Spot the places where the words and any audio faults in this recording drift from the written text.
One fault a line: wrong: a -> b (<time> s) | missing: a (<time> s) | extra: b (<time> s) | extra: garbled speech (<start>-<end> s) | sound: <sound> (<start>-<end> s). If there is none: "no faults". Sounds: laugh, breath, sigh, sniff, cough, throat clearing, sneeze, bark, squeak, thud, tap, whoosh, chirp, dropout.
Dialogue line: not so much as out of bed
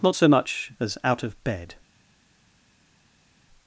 no faults